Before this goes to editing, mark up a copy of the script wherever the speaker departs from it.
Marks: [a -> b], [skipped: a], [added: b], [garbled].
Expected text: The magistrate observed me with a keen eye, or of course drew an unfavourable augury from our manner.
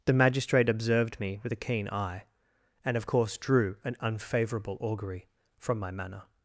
The magistrate observed me with a keen eye, [or -> and] of course drew an unfavourable augury from [our -> my] manner.